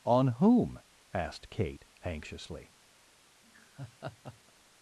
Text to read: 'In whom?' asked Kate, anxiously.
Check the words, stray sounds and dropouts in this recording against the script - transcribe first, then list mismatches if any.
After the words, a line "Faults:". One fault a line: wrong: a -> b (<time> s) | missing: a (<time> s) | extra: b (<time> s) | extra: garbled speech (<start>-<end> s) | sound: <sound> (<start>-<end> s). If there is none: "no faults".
'On whom?' asked Kate, anxiously.
Faults:
wrong: In -> On (0.0 s)
sound: laugh (3.4-4.5 s)